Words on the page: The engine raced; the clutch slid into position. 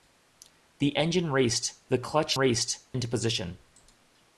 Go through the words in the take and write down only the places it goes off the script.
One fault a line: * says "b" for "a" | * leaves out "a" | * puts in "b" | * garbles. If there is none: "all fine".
* says "raced" for "slid"